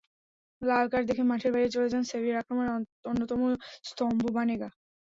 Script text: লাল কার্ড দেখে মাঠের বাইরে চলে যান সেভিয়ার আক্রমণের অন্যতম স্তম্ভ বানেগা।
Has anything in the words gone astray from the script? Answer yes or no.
no